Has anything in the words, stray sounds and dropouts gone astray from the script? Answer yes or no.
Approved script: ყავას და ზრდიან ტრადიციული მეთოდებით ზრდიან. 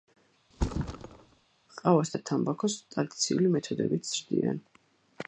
yes